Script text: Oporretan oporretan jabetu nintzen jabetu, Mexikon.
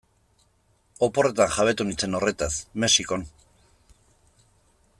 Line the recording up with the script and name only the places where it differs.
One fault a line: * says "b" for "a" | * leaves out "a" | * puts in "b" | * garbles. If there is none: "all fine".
* leaves out "oporretan"
* says "horretaz" for "jabetu"